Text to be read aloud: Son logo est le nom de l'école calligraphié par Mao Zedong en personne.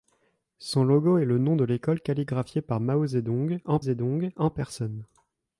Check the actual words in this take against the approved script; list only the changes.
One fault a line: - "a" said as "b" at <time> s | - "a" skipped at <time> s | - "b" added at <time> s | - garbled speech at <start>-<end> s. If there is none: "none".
- "Zedong en" added at 3.8 s